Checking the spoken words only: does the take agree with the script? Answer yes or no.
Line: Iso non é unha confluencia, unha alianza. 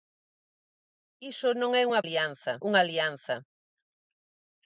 no